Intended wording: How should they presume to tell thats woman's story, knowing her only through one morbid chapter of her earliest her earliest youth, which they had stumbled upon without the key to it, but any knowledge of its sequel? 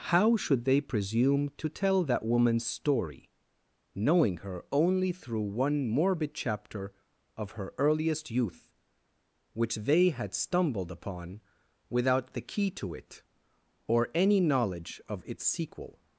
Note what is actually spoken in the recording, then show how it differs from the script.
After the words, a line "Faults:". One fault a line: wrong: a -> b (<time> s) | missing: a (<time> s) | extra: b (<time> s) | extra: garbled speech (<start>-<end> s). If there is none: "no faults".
How should they presume to tell that woman's story, knowing her only through one morbid chapter of her earliest youth, which they had stumbled upon without the key to it, or any knowledge of its sequel?
Faults:
wrong: thats -> that (2.0 s)
missing: her earliest (8.3 s)
wrong: but -> or (13.9 s)